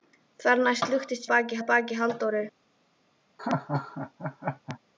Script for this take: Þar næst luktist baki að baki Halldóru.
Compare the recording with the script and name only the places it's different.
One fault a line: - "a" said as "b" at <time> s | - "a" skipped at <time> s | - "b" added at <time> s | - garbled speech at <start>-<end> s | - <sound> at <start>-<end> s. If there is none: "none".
- laugh at 3.4-4.8 s